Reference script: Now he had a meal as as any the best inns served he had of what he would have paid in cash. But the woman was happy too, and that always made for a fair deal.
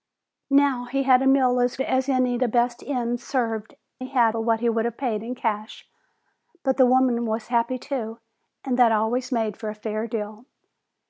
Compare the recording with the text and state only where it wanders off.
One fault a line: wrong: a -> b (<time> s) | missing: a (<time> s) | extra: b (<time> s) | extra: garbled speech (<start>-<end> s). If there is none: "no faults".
no faults